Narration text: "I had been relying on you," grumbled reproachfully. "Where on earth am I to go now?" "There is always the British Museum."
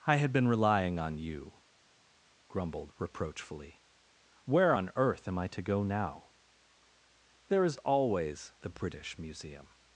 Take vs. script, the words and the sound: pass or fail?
pass